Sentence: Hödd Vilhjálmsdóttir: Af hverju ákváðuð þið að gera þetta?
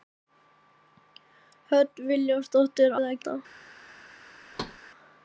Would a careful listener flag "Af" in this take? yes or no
yes